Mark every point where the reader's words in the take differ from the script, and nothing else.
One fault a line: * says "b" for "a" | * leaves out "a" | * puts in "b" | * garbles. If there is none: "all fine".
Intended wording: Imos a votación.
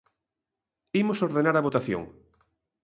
* puts in "ordenar"